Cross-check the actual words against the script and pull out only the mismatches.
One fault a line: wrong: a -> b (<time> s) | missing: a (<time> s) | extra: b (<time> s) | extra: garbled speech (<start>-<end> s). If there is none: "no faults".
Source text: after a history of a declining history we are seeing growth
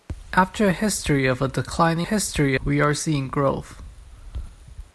no faults